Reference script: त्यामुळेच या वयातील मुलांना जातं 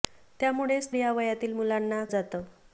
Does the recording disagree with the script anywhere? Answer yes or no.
no